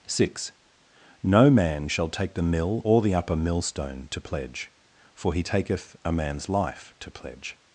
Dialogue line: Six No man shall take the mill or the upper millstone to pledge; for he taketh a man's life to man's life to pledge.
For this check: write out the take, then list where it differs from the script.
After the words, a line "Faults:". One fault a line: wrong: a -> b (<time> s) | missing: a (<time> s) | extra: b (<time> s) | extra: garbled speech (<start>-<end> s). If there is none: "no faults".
Six No man shall take the mill or the upper millstone to pledge; for he taketh a man's life to pledge.
Faults:
missing: man's life to (7.1 s)